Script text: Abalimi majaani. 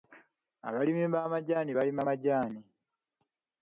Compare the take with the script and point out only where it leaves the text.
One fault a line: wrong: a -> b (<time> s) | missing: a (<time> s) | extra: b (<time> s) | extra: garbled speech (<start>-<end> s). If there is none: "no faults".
extra: b'amajaani balima (1.1 s)